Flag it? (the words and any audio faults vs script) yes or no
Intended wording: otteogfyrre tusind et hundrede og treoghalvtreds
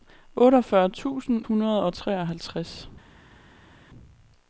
yes